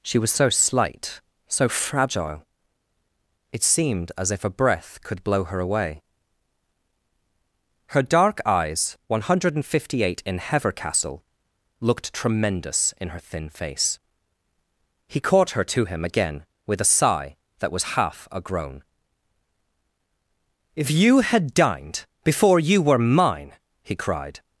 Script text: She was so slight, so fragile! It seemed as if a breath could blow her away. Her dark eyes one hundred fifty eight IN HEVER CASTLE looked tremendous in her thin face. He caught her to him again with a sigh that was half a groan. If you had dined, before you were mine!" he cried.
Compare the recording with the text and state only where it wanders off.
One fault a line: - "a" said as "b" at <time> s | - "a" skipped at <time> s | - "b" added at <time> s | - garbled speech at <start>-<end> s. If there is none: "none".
none